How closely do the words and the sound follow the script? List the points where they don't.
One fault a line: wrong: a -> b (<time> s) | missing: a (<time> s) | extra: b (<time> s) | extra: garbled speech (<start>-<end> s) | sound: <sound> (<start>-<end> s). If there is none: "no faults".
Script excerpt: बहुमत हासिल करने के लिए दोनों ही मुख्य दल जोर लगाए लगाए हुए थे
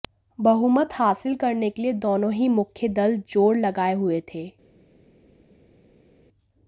missing: लगाए (3.9 s)